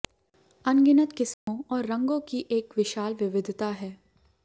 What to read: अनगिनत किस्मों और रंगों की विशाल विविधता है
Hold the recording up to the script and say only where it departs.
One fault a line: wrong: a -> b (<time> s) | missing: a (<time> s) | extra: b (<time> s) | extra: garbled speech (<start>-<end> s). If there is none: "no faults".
extra: एक (2.5 s)